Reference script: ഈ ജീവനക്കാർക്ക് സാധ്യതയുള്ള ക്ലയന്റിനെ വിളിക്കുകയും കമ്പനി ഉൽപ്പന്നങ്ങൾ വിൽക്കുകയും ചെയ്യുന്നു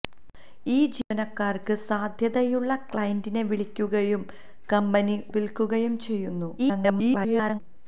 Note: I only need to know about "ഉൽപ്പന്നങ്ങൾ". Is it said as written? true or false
false